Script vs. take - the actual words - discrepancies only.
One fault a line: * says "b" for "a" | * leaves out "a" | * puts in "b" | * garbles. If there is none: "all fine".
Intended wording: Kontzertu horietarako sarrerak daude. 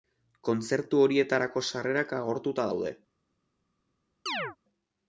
* puts in "agortuta"